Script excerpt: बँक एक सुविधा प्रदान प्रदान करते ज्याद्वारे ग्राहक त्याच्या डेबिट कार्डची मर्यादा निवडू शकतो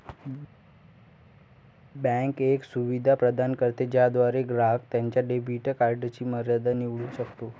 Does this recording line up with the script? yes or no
no